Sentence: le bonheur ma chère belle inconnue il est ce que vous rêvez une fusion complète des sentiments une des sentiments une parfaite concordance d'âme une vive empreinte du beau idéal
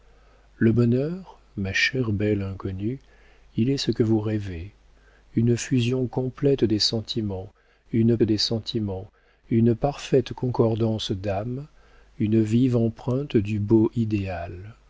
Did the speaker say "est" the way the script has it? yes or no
yes